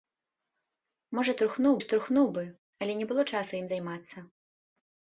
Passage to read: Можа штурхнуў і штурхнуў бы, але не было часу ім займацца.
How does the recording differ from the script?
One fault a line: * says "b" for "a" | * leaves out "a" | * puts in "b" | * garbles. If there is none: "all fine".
all fine